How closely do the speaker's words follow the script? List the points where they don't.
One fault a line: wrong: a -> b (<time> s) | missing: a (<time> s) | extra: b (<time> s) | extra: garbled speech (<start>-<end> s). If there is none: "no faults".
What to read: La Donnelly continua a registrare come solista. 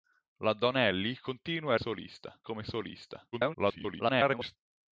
wrong: registrare -> solista (1.8 s)
extra: garbled speech (3.3-4.6 s)